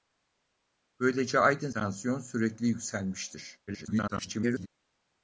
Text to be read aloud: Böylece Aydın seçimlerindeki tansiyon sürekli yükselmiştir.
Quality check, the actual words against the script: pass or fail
fail